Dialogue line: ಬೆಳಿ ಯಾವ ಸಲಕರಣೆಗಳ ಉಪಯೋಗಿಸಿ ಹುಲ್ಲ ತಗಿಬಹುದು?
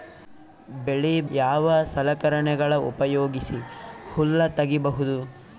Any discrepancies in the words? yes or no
no